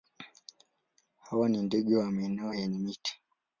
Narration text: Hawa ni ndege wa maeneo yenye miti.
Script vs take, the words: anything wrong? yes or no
no